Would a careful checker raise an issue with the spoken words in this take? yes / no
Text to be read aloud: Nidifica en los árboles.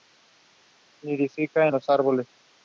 no